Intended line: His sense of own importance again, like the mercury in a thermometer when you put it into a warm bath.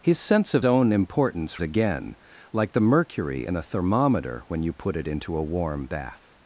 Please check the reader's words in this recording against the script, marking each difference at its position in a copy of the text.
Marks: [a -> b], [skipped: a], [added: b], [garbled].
His sense of own importance again, like the mercury in a thermometer when you put it into a warm bath.